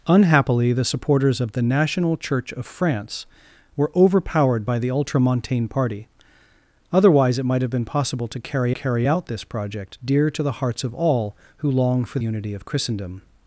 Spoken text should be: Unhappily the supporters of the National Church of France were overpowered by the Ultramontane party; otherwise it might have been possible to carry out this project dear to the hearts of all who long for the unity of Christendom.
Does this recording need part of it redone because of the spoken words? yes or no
yes